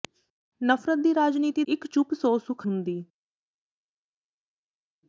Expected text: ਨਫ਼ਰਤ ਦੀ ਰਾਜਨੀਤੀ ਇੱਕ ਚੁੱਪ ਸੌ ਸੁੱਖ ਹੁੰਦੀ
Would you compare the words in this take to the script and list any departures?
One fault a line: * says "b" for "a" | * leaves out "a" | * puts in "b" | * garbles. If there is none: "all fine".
all fine